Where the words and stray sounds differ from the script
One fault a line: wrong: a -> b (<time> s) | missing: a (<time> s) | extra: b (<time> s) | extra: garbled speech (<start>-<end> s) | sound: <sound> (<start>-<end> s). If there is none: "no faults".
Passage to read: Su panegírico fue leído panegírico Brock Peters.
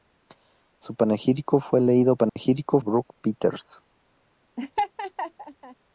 sound: dropout (2.3-2.4 s)
sound: laugh (4.6-5.8 s)